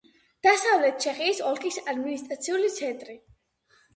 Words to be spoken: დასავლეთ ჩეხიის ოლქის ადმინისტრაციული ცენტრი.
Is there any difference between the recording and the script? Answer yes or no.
no